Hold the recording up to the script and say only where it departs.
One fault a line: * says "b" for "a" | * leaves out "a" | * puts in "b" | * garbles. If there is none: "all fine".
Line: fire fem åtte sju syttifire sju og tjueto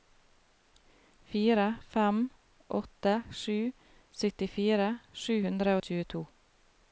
* puts in "hundre"